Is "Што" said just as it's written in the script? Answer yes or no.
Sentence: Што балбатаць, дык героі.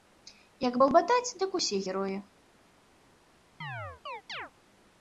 no